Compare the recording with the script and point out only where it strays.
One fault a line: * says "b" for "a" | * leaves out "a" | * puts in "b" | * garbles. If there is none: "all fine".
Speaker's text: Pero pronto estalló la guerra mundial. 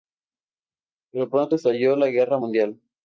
all fine